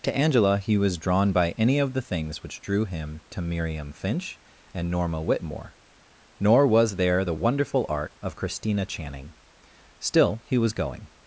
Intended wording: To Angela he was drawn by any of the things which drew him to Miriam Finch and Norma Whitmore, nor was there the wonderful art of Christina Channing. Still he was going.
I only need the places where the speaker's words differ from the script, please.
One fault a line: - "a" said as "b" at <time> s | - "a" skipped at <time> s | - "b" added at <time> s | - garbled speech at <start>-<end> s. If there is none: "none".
none